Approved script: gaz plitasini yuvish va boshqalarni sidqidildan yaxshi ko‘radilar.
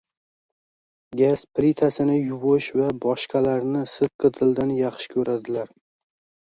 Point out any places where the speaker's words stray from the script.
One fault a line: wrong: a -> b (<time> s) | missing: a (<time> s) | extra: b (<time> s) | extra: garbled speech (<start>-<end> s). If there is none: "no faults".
no faults